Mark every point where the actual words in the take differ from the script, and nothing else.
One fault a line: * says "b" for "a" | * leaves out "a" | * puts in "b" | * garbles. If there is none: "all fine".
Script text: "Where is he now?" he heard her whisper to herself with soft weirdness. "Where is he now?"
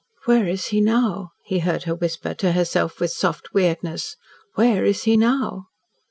all fine